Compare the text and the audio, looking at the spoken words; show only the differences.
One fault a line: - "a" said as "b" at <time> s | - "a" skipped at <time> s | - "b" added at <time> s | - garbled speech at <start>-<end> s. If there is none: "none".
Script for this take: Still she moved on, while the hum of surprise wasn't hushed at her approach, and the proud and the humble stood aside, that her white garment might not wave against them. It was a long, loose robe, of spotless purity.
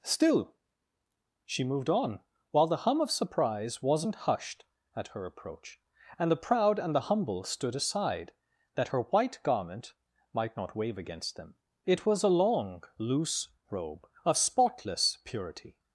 none